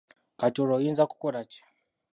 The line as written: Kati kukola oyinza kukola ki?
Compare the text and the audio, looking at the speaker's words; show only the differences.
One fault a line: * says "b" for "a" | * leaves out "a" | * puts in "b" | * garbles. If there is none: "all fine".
* says "olwo" for "kukola"